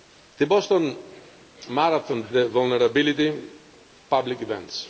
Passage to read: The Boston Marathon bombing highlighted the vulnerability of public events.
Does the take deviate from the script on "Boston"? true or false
false